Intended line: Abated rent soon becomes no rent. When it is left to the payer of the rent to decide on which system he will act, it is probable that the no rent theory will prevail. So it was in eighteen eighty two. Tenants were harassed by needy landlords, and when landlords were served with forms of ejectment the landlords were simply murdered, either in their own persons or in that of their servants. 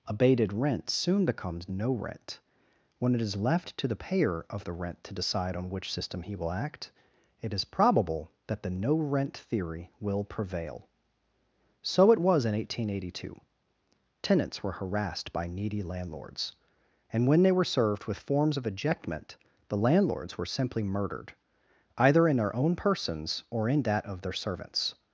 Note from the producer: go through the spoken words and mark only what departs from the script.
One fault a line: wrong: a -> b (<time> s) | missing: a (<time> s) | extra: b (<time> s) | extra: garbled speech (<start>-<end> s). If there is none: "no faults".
wrong: landlords -> they (17.4 s)